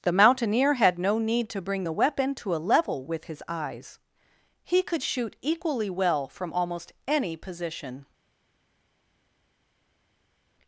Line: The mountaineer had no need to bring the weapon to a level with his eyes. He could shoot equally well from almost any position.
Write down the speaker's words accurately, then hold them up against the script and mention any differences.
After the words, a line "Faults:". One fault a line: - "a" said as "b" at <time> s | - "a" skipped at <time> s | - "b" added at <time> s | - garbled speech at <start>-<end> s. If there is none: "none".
The mountaineer had no need to bring the weapon to a level with his eyes. He could shoot equally well from almost any position.
Faults:
none